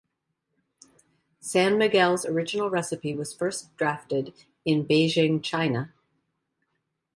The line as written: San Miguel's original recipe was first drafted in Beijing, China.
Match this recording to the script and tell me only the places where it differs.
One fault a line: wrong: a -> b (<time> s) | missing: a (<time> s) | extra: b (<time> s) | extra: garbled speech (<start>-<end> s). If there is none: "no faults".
no faults